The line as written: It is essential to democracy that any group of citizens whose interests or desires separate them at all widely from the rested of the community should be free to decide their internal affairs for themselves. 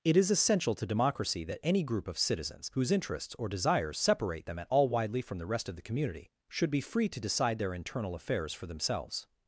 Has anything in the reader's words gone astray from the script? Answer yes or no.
yes